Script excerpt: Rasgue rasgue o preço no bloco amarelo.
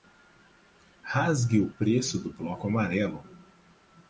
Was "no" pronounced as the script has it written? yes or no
no